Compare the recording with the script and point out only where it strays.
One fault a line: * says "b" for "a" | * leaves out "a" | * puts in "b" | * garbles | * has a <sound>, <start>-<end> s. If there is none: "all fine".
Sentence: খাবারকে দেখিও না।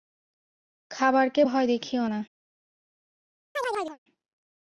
* puts in "ভয়"
* has a chirp, 3.5-4.0 s